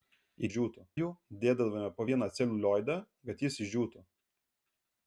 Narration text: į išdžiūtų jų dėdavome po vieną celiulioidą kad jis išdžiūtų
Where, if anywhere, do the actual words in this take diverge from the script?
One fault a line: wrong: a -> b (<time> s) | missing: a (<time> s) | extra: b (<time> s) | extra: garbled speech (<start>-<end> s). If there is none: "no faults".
no faults